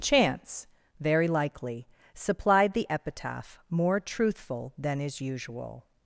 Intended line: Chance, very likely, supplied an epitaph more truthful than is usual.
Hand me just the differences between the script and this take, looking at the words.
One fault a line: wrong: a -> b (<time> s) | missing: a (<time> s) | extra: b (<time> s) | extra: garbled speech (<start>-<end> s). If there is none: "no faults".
wrong: an -> the (2.7 s)